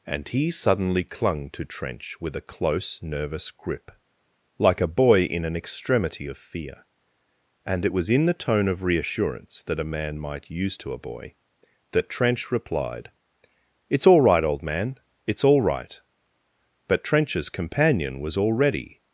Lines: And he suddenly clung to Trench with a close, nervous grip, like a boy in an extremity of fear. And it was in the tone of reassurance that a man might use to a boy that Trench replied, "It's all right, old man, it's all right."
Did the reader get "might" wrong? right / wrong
right